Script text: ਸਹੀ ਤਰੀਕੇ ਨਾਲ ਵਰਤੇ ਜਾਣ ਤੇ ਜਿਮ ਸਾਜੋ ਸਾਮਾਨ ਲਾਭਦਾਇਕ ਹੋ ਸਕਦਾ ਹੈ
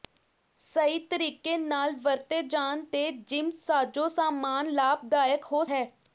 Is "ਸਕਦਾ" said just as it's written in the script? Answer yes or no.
no